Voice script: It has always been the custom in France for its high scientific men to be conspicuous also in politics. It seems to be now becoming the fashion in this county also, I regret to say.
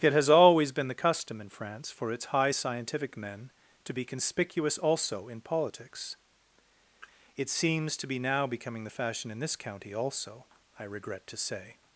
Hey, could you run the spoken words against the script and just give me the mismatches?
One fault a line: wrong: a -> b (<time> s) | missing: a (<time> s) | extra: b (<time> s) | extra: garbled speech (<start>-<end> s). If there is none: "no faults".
no faults